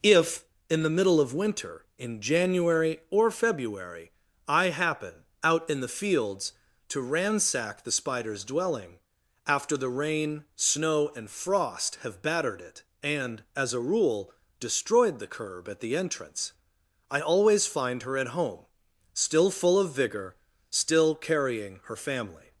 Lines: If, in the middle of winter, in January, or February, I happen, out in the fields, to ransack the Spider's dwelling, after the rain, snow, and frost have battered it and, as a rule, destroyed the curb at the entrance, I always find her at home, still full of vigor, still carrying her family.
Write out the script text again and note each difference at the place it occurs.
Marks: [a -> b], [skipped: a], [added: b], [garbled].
If, in the middle of winter, in January, or February, I happen, out in the fields, to ransack the Spider's dwelling, after the rain, snow, and frost have battered it and, as a rule, destroyed the curb at the entrance, I always find her at home, still full of vigor, still carrying her family.